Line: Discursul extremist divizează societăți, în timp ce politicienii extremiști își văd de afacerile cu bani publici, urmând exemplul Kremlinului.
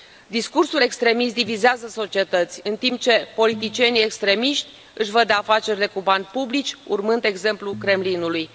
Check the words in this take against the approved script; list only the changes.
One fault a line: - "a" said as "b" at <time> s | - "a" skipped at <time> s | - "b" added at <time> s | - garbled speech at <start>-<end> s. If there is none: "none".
none